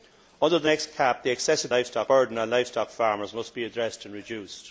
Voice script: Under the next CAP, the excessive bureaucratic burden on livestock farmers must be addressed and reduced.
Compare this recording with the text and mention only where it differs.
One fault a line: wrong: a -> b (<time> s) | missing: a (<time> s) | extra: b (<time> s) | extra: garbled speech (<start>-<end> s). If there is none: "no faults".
wrong: bureaucratic -> livestock (1.7 s)